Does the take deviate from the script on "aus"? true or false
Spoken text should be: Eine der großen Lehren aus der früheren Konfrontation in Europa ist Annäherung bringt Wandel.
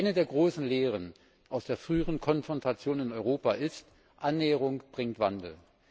false